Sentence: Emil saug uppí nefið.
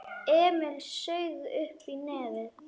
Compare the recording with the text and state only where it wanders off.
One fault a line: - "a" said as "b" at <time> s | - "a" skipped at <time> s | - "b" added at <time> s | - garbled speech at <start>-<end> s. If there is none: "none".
none